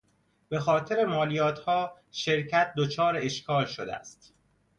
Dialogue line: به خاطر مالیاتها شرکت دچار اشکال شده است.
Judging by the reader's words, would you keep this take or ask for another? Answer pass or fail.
pass